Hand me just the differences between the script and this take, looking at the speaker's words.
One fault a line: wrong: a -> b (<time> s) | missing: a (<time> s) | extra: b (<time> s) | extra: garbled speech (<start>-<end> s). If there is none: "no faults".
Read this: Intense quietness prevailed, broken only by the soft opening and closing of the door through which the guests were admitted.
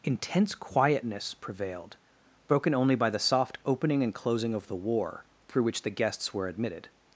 wrong: door -> war (4.8 s)